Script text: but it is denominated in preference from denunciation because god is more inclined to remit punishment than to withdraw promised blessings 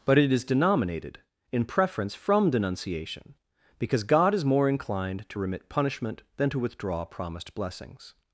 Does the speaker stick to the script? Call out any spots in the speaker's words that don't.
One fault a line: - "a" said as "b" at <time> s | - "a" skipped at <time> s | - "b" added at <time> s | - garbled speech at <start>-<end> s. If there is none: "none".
none